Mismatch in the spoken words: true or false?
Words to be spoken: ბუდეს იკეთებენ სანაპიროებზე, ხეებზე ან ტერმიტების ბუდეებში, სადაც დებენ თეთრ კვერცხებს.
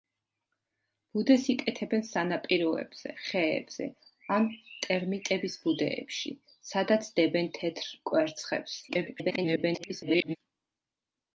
true